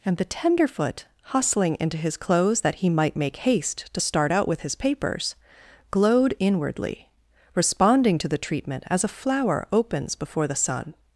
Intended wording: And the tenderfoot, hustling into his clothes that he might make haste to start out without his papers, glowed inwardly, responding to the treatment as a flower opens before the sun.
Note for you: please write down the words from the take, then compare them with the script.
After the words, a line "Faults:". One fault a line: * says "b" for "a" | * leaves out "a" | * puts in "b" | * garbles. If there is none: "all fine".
And the tenderfoot, hustling into his clothes that he might make haste to start out with his papers, glowed inwardly, responding to the treatment as a flower opens before the sun.
Faults:
* says "with" for "without"